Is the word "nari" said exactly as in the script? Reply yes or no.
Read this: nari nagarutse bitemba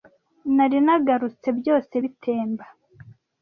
yes